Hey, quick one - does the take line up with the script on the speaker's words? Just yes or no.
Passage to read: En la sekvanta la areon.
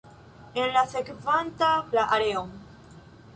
yes